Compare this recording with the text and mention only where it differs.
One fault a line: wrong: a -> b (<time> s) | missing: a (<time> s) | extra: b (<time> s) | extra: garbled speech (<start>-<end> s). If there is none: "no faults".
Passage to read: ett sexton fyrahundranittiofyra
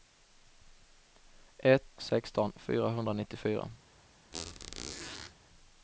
no faults